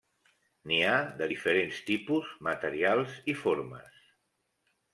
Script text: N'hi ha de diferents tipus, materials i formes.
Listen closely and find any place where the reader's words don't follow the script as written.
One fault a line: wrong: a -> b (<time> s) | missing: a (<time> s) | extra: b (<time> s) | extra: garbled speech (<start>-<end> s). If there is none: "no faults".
no faults